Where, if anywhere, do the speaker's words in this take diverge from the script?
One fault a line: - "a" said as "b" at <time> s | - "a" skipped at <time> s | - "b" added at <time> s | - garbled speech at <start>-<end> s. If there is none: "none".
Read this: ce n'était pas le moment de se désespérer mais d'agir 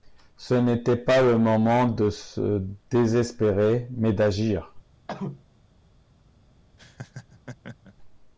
none